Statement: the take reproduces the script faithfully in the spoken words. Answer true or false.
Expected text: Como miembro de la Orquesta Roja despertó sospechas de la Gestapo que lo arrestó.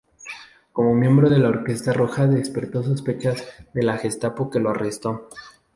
true